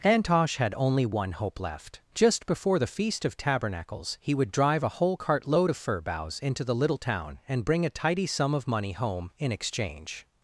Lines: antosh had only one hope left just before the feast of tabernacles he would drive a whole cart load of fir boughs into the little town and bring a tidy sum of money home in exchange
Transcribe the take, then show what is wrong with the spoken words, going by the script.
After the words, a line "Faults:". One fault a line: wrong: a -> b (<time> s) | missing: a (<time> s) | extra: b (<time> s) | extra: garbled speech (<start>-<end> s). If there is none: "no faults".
antosh had only one hope left just before the feast of tabernacles he would drive a whole cart load of fir boughs into the little town and bring a tidy sum of money home in exchange
Faults:
no faults